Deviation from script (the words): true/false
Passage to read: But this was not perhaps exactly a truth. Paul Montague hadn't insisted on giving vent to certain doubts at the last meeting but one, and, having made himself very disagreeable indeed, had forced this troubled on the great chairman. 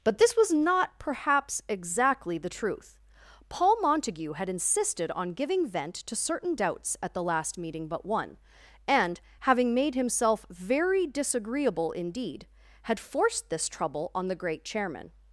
true